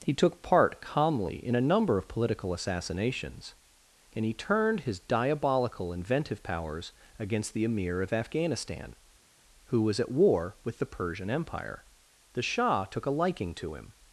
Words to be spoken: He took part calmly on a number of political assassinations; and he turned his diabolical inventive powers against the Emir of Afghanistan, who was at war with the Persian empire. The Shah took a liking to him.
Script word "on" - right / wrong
wrong